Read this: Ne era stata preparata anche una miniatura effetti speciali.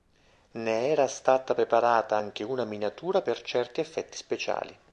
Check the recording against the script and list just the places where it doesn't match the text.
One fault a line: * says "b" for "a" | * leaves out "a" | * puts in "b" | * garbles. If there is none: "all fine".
* puts in "per certi"